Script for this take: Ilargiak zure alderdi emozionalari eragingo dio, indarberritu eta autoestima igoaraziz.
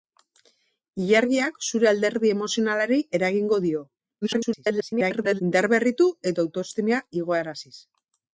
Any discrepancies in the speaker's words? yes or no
yes